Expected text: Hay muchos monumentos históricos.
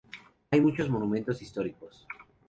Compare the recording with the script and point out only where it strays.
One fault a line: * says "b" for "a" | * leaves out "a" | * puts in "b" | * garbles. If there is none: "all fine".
all fine